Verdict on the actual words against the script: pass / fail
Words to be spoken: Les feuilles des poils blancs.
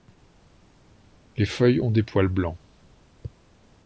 fail